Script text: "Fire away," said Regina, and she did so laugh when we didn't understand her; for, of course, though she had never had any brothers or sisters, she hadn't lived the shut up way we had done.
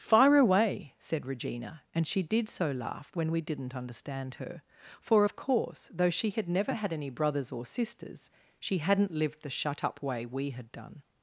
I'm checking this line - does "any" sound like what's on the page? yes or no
yes